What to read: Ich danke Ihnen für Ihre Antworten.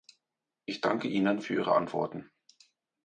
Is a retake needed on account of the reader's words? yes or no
no